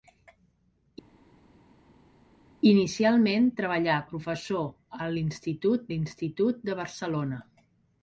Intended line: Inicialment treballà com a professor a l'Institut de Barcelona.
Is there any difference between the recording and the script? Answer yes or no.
yes